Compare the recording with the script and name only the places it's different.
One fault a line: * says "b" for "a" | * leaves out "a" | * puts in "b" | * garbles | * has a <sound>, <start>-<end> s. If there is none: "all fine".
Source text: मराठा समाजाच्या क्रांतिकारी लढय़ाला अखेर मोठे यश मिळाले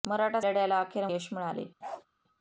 * leaves out "समाजाच्या क्रांतिकारी"
* leaves out "मोठे"
* has a bark, 1.8-2.1 s